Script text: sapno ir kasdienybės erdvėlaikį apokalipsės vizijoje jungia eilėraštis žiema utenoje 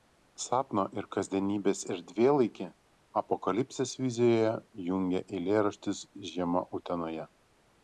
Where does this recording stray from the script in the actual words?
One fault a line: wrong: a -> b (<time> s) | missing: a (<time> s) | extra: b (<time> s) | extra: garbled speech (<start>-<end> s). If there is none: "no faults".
no faults